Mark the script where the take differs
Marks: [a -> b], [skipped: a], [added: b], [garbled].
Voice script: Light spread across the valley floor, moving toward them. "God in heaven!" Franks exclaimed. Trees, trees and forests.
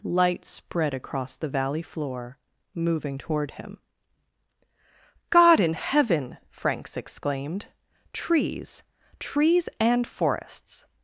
Light spread across the valley floor, moving toward [them. -> him] "God in heaven!" Franks exclaimed. Trees, trees and forests.